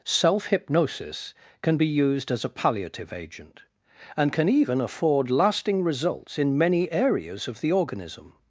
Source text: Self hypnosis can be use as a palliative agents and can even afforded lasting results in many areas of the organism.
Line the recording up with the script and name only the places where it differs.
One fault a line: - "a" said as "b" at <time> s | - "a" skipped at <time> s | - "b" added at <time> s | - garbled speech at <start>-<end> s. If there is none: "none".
- "use" said as "used" at 1.9 s
- "agents" said as "agent" at 3.1 s
- "afforded" said as "afford" at 4.8 s